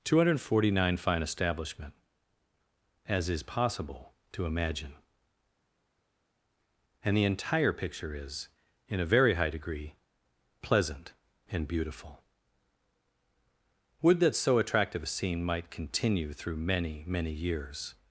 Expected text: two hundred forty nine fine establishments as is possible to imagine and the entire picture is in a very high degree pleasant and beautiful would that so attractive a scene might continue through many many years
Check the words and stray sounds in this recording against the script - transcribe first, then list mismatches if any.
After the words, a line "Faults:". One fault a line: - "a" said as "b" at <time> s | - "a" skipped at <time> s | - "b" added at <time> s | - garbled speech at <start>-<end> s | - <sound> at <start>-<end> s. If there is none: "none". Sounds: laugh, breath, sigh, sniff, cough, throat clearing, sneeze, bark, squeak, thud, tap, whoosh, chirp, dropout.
two hundred forty nine fine establishment as is possible to imagine and the entire picture is in a very high degree pleasant and beautiful would that so attractive a scene might continue through many many years
Faults:
- "establishments" said as "establishment" at 1.2 s